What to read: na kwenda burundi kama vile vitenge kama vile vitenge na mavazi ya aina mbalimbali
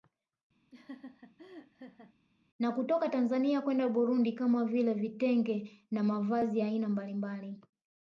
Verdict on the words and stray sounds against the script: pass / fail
fail